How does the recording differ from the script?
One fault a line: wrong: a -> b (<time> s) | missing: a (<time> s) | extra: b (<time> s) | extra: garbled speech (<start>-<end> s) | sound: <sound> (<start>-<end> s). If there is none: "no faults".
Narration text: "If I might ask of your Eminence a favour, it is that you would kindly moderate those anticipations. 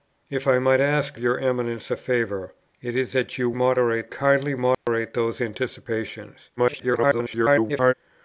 missing: of (1.2 s)
wrong: would -> moderate (3.5 s)
sound: dropout (4.7-4.9 s)
extra: garbled speech (6.6-7.9 s)